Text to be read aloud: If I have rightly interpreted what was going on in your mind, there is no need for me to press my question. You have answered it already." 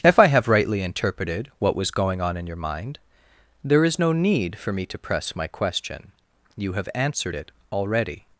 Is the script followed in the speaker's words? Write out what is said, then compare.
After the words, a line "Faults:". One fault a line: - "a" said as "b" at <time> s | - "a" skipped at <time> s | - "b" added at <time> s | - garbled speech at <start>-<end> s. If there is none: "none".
If I have rightly interpreted what was going on in your mind, there is no need for me to press my question. You have answered it already."
Faults:
none